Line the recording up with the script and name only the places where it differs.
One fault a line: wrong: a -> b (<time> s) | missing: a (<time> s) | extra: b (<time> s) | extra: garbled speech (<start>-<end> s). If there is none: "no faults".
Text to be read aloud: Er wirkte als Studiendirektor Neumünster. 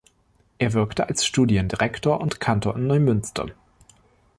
extra: und Kantor in (2.2 s)